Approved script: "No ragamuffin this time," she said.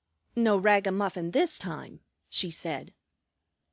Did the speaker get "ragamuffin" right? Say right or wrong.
right